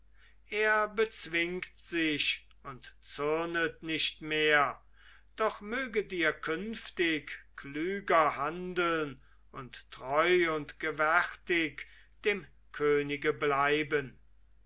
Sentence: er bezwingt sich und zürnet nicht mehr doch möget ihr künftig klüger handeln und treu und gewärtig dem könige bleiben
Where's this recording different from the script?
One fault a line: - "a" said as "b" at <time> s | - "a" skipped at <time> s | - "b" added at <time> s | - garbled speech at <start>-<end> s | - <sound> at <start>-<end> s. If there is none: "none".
none